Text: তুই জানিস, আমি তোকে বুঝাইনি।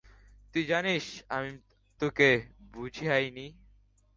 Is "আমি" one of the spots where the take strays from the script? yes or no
yes